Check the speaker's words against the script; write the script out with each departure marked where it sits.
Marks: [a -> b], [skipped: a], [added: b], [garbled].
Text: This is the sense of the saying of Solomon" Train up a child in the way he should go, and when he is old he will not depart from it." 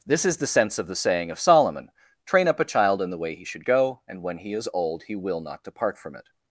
This is the sense of the saying of Solomon" Train up a child in the way he should go, and when he is old he will not depart from it."